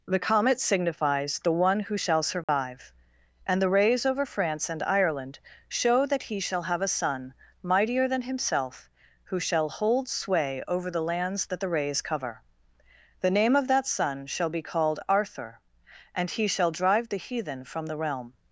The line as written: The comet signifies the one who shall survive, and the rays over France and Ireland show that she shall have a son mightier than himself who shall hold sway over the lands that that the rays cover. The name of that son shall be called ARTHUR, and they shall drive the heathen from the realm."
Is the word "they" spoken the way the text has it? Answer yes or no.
no